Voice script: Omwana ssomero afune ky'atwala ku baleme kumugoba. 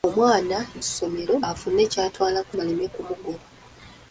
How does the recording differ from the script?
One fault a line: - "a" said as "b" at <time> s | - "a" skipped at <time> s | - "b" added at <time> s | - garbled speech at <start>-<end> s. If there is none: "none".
none